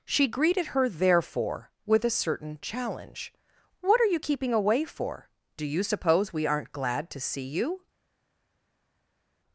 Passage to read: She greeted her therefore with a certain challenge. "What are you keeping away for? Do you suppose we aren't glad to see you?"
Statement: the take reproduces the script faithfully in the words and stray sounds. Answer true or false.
true